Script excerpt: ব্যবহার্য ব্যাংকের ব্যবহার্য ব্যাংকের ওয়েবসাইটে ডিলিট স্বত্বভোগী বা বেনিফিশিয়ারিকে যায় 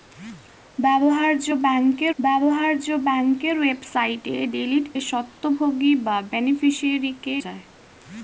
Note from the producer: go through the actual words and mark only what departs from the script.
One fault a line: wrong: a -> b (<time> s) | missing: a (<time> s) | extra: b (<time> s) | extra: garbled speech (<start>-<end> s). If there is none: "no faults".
no faults